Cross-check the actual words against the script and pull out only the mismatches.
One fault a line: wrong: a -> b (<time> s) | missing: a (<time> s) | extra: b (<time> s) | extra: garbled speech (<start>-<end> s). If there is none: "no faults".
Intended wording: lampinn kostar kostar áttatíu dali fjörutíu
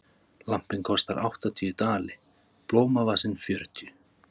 missing: kostar (1.2 s)
extra: blómavasinn (2.7 s)